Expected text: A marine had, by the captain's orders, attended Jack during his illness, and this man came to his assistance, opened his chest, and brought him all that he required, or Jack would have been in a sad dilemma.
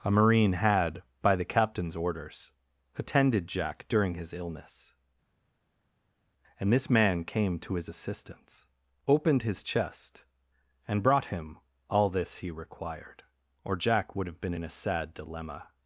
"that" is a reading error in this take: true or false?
true